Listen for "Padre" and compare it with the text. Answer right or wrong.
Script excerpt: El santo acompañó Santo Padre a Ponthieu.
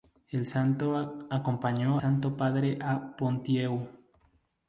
right